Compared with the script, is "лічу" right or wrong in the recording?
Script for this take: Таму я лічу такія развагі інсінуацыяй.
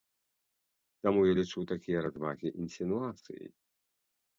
right